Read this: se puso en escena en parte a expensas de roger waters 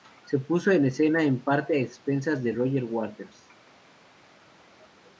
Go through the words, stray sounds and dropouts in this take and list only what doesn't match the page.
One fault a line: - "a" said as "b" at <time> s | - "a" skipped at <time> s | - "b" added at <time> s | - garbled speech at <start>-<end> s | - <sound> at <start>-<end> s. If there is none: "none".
none